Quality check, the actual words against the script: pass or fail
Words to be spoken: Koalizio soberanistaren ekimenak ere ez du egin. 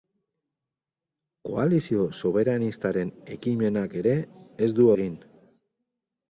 pass